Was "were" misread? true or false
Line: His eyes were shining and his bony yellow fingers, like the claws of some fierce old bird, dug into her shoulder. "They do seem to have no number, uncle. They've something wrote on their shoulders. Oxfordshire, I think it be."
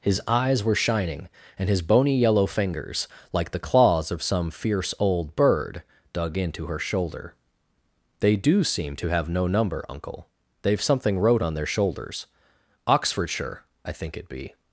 false